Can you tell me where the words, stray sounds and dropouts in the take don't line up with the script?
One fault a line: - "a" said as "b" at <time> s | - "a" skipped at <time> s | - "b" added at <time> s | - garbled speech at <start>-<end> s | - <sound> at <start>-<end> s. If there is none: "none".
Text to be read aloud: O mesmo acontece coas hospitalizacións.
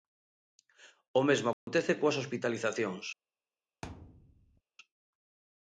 - dropout at 1.5-1.7 s
- thud at 3.8-4.6 s